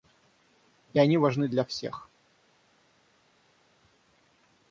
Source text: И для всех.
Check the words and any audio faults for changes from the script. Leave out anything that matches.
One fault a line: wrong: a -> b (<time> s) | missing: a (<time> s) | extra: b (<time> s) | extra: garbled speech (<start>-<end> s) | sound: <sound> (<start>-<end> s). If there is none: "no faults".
extra: они важны (1.0 s)